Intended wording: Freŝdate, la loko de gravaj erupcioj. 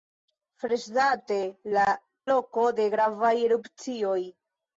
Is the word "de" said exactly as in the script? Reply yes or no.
yes